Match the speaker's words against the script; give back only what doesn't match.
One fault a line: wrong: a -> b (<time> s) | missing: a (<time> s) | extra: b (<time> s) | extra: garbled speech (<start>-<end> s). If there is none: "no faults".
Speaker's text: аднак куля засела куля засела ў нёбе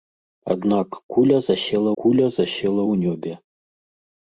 no faults